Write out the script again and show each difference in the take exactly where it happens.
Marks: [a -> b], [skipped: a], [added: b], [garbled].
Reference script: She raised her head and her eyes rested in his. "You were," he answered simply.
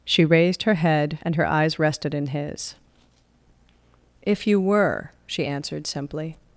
She raised her head and her eyes rested in his. [added: If] "You were," [he -> she] answered simply.